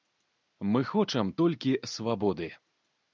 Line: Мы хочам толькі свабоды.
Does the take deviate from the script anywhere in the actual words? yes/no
no